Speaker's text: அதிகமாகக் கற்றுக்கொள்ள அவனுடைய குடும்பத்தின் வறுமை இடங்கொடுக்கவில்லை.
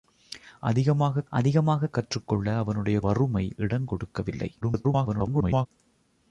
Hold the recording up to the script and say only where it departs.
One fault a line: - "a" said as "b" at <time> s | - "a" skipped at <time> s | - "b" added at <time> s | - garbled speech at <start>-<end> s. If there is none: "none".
- "அதிகமாகக்" added at 1.3 s
- "குடும்பத்தின்" skipped at 3.0 s
- garbled speech at 4.6-5.7 s